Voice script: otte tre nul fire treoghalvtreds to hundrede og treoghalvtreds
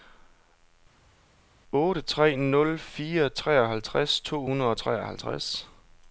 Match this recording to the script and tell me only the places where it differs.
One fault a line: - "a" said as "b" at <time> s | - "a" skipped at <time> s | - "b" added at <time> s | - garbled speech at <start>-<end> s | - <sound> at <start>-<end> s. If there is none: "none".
none